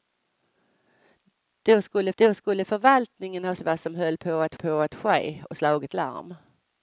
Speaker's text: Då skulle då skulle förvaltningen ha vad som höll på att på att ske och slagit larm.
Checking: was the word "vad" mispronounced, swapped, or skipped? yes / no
no